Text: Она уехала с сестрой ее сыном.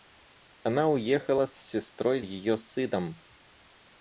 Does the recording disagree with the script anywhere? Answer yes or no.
no